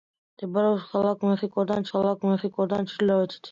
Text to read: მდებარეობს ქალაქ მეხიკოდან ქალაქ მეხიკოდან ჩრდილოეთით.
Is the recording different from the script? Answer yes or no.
no